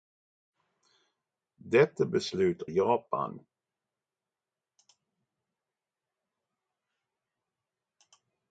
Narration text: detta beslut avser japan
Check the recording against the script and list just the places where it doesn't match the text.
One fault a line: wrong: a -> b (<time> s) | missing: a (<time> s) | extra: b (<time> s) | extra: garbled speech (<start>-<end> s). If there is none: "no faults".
missing: avser (2.6 s)